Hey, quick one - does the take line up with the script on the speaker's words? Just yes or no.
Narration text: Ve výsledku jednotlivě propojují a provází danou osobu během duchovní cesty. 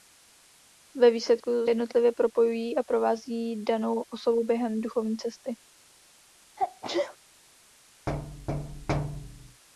yes